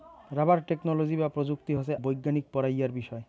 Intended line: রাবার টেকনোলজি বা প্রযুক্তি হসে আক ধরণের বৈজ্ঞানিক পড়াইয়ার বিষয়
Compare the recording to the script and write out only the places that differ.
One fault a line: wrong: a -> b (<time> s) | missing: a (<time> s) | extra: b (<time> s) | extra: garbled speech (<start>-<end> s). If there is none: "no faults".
missing: আক ধরণের (1.9 s)